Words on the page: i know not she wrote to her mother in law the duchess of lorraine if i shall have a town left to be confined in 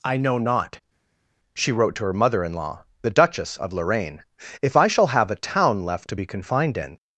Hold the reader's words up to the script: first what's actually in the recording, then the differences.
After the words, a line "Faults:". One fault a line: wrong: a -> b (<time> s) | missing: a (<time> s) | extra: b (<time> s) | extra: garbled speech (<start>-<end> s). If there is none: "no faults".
i know not she wrote to her mother in law the duchess of lorraine if i shall have a town left to be confined in
Faults:
no faults